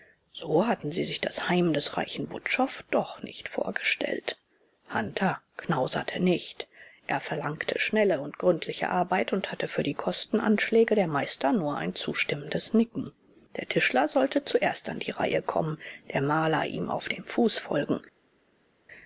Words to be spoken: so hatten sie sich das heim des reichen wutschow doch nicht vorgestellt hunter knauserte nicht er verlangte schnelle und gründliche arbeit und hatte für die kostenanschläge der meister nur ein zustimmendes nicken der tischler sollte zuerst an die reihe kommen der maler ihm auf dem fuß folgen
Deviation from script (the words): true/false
false